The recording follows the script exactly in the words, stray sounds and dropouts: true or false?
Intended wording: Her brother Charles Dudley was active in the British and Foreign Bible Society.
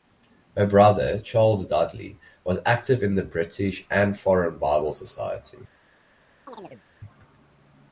false